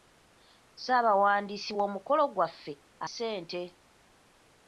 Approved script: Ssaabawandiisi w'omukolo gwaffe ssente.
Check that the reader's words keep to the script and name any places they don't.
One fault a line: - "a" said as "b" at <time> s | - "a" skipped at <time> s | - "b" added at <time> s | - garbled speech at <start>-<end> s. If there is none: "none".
none